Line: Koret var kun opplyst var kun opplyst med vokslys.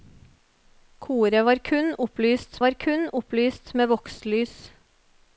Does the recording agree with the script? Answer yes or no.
yes